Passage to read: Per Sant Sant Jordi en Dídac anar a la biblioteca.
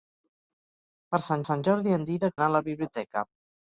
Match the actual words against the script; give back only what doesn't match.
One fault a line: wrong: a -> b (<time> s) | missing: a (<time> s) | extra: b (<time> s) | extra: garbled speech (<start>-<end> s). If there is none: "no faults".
no faults